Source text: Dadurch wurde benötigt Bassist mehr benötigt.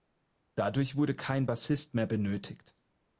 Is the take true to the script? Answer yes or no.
no